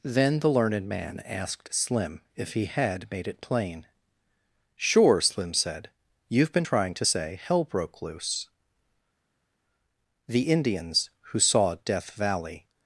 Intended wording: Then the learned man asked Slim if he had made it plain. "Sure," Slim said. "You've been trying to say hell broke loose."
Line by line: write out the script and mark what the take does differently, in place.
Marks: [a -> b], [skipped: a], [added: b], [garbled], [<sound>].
Then the learned man asked Slim if he had made it plain. "Sure," Slim said. "You've been trying to say hell broke loose." [added: The Indians who saw Death Valley]